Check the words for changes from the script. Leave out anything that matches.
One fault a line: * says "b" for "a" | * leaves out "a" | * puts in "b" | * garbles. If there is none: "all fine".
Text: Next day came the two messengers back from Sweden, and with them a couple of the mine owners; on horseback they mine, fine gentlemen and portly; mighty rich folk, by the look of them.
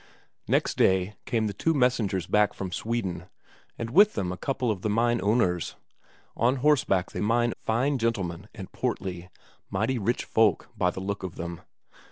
all fine